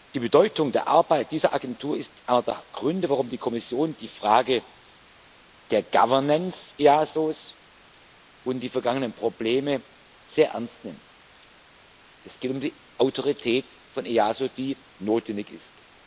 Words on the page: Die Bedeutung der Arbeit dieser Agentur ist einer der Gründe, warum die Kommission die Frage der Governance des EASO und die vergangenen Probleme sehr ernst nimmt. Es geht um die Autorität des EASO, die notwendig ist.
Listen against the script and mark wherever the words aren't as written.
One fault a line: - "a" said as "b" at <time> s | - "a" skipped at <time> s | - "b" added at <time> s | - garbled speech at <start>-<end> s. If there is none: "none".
none